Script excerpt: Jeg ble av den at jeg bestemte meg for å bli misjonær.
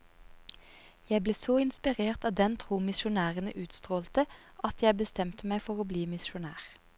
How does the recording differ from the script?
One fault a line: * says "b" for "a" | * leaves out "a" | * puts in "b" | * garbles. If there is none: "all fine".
* puts in "så inspirert"
* puts in "tro misjonærene utstrålte"